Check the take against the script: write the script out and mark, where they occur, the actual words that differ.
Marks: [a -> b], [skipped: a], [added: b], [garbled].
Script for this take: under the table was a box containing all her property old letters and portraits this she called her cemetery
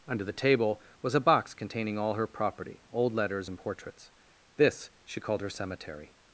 under the table was a box containing all her property old letters and portraits this she called her cemetery